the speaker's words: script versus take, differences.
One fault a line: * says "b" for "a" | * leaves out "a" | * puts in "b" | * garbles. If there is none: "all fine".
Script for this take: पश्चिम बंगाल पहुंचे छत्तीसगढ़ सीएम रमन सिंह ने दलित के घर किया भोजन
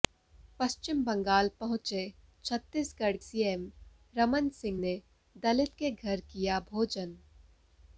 all fine